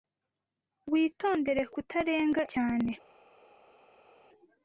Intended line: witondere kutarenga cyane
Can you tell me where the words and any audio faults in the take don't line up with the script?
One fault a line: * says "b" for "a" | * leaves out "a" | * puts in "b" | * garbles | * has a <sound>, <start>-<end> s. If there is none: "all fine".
all fine